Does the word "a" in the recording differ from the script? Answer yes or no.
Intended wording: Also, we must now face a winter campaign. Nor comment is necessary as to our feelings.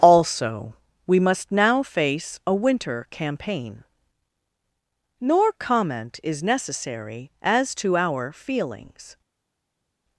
no